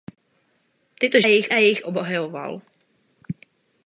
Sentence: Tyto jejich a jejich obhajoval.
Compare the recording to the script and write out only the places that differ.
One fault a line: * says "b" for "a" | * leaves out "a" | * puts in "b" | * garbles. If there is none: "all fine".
all fine